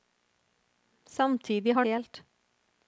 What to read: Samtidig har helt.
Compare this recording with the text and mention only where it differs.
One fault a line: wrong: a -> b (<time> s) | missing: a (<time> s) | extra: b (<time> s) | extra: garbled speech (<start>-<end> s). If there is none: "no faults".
no faults